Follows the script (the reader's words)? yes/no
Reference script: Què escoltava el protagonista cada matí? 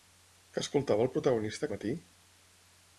no